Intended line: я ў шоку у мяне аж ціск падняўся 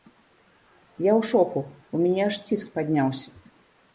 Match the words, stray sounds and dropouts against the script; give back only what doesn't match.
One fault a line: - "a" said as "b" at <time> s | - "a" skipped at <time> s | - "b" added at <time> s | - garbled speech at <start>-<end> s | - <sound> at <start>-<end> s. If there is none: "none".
none